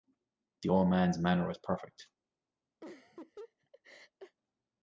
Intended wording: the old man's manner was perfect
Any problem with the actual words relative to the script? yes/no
no